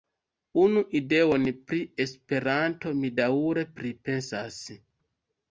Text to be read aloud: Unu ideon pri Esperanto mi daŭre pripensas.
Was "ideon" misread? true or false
false